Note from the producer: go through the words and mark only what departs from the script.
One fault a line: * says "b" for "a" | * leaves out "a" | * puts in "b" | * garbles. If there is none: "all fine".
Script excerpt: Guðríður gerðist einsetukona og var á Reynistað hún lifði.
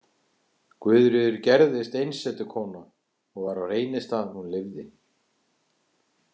all fine